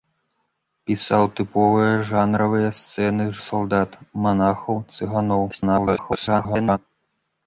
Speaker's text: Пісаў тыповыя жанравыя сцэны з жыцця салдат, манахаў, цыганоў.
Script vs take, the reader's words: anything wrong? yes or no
yes